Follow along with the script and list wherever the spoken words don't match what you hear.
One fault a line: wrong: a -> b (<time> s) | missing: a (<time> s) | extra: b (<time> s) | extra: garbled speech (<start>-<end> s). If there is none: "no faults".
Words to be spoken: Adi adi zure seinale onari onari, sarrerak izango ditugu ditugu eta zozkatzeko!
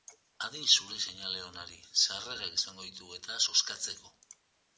missing: adi (0.6 s)
missing: onari (1.8 s)
missing: ditugu (3.2 s)